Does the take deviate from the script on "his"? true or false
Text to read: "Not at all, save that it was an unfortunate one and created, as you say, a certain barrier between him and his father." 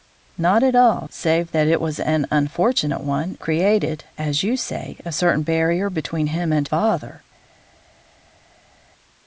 true